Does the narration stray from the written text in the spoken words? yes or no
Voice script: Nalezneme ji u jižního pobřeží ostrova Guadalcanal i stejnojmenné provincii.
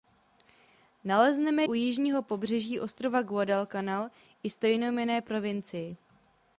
yes